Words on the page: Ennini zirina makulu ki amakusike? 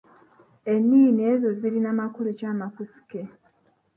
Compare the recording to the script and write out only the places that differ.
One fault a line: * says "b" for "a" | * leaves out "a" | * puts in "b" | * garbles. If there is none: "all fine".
* puts in "ezo"